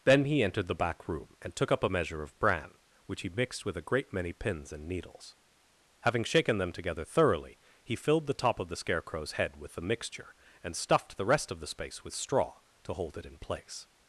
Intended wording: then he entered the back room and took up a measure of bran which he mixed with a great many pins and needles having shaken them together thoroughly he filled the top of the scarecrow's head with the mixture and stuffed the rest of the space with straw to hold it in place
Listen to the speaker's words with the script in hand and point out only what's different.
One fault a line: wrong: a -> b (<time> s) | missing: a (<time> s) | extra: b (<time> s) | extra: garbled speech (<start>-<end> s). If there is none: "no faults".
no faults